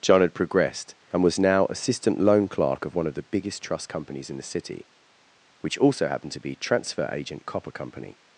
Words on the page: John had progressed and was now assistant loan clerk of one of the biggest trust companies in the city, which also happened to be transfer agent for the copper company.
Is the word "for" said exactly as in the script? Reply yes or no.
no